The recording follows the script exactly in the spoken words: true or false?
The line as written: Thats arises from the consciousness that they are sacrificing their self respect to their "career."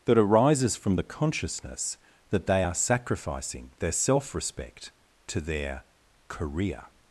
false